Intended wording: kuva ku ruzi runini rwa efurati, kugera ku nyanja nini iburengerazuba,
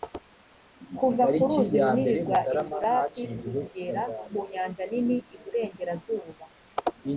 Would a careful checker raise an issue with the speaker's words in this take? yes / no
no